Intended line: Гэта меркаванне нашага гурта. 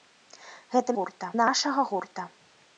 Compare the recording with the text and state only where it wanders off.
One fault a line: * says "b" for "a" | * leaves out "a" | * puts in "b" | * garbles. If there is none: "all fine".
* says "гурта" for "меркаванне"